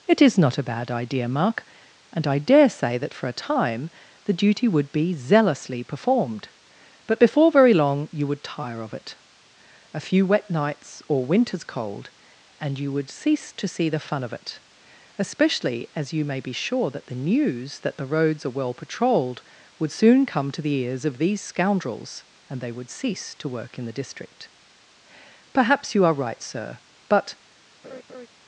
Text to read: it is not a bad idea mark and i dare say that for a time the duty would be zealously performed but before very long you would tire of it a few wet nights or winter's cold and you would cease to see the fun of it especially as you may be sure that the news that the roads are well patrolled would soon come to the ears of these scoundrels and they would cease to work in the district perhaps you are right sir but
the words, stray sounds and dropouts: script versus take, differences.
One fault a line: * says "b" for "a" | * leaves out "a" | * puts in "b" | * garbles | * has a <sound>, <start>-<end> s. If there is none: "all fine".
* has a laugh, 27.8-28.3 s